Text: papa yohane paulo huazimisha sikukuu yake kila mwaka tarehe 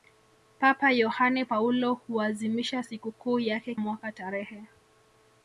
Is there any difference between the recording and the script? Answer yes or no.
yes